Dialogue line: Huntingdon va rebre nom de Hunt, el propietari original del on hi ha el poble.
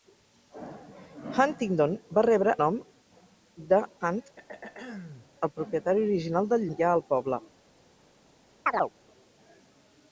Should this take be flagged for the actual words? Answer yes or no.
no